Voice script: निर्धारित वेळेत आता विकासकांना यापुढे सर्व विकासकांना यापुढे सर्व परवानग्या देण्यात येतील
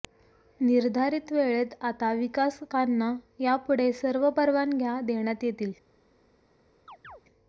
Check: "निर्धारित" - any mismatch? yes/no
no